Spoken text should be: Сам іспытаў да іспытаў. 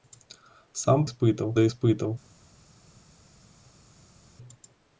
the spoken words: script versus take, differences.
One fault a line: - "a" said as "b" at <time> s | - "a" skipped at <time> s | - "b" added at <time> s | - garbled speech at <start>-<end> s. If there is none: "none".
none